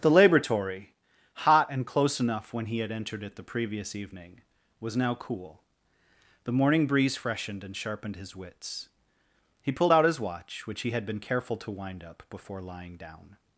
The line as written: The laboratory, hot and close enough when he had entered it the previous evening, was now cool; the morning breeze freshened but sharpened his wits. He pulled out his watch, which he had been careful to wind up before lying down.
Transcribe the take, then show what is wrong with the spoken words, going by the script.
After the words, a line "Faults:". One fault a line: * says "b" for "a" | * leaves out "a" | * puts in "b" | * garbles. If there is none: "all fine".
The laboratory, hot and close enough when he had entered it the previous evening, was now cool; the morning breeze freshened and sharpened his wits. He pulled out his watch, which he had been careful to wind up before lying down.
Faults:
* says "and" for "but"